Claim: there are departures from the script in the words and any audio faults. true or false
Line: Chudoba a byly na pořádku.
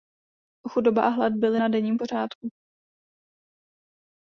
true